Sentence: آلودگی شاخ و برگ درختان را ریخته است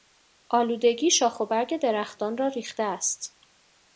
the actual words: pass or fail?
pass